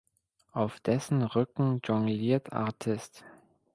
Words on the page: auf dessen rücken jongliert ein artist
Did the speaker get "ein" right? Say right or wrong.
wrong